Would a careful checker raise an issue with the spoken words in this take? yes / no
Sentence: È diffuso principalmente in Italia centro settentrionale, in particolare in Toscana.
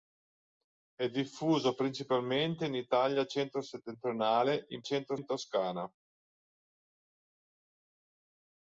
yes